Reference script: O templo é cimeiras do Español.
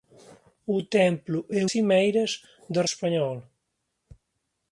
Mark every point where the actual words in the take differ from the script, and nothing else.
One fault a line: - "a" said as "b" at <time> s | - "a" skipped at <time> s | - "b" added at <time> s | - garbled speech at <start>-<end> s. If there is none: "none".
none